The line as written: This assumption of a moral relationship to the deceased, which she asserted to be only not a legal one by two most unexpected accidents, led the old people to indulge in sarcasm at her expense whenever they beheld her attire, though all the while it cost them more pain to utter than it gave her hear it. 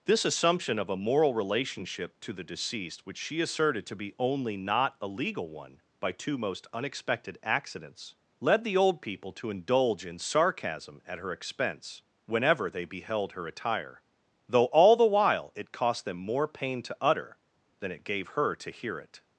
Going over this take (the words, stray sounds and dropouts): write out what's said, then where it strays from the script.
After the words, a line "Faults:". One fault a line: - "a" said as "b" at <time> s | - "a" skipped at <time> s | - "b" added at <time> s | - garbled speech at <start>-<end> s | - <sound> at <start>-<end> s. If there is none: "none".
This assumption of a moral relationship to the deceased, which she asserted to be only not a legal one by two most unexpected accidents, led the old people to indulge in sarcasm at her expense whenever they beheld her attire, though all the while it cost them more pain to utter than it gave her to hear it.
Faults:
- "to" added at 18.6 s